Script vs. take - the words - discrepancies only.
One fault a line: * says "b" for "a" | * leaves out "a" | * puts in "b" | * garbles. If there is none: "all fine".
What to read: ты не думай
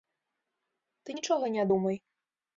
* puts in "нічога"